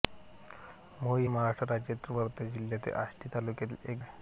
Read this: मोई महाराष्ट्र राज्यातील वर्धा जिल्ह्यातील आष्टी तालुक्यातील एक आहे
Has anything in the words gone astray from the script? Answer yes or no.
no